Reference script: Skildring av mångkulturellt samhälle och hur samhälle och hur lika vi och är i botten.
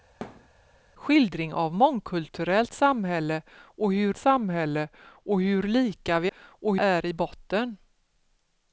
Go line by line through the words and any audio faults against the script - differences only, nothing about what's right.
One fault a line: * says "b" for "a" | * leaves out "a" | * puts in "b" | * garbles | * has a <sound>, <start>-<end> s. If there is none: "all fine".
* has a thud, 0.2-0.5 s